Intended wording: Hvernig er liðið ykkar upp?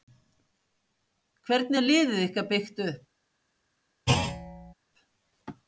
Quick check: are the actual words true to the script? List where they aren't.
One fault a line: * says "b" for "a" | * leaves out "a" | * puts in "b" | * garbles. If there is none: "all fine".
* puts in "byggt"